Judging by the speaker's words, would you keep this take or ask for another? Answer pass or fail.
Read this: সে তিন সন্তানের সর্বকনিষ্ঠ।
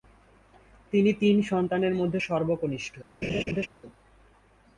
fail